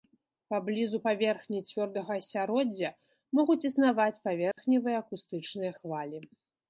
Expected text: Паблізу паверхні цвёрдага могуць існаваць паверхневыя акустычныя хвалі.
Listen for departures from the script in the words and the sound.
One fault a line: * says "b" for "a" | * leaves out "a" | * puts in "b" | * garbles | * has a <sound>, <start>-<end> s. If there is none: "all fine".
* puts in "асяроддзя"
* has a dropout, 4.5-4.6 s